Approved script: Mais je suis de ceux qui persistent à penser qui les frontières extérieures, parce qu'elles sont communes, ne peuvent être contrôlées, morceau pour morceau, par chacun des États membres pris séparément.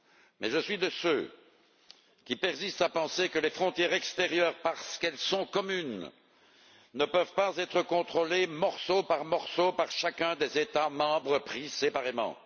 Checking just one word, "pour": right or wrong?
wrong